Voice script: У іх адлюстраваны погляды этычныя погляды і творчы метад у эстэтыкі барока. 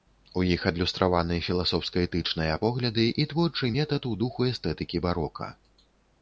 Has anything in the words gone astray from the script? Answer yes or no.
yes